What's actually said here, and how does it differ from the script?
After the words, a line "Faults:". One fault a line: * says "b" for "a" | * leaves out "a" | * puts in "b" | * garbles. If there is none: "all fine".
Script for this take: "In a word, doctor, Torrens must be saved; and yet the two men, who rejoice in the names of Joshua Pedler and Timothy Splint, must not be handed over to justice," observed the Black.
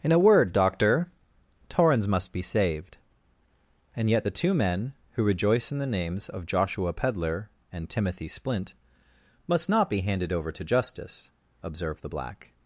"In a word, doctor, Torrens must be saved; and yet the two men, who rejoice in the names of Joshua Pedler and Timothy Splint, must not be handed over to justice," observed the Black.
Faults:
all fine